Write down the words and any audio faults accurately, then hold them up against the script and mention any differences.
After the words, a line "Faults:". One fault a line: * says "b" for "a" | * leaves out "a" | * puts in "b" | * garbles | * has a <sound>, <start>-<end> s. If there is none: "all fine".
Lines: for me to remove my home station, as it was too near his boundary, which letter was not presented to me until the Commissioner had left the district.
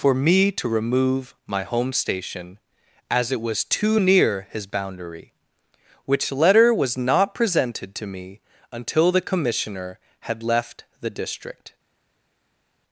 for me to remove my home station, as it was too near his boundary, which letter was not presented to me until the Commissioner had left the district.
Faults:
all fine